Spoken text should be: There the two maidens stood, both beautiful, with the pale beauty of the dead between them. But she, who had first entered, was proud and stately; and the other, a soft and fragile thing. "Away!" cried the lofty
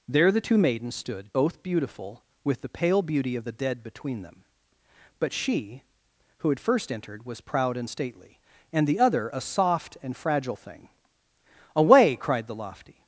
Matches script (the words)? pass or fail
pass